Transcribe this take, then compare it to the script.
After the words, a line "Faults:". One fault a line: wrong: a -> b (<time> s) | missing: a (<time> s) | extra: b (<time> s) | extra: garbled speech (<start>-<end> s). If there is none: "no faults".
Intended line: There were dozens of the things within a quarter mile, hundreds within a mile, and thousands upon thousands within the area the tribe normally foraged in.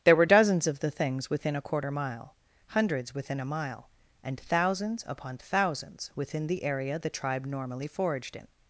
There were dozens of the things within a quarter mile, hundreds within a mile, and thousands upon thousands within the area the tribe normally foraged in.
Faults:
no faults